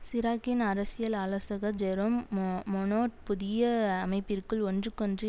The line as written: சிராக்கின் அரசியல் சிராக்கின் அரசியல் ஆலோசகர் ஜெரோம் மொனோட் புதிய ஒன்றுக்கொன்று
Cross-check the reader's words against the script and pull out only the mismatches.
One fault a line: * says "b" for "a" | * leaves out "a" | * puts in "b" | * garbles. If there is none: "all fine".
* leaves out "சிராக்கின் அரசியல்"
* puts in "அமைப்பிற்குள்"